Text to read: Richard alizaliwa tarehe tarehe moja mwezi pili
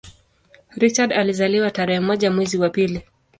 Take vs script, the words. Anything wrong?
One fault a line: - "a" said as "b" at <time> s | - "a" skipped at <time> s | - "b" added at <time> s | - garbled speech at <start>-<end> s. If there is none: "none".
- "tarehe" skipped at 2.0 s
- "wa" added at 2.6 s